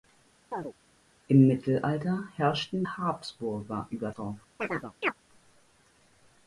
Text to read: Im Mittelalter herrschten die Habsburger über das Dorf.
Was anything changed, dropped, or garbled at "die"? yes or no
yes